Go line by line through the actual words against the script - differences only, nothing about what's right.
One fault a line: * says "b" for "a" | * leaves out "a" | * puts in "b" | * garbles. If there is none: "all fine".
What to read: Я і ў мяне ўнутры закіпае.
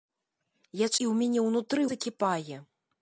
all fine